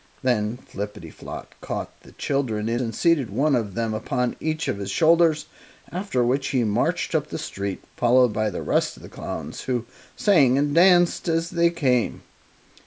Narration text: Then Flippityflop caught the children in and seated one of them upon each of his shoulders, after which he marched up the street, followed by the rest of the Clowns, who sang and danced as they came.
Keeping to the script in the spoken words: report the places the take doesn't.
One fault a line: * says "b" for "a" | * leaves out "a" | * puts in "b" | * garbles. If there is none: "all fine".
all fine